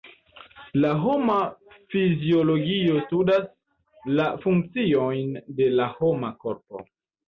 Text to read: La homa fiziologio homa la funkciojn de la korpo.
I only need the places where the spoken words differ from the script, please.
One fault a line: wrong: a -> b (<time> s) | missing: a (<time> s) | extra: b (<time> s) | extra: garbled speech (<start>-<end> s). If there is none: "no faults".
wrong: homa -> studas (3.0 s)
extra: homa (6.0 s)